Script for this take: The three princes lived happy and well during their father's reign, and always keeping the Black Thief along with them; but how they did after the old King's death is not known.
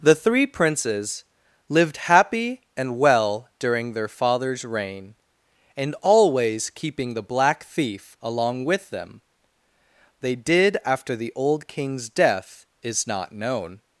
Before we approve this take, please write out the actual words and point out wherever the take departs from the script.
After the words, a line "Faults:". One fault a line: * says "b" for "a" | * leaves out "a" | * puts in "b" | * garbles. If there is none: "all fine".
The three princes lived happy and well during their father's reign, and always keeping the Black Thief along with them; they did after the old King's death is not known.
Faults:
* leaves out "but how"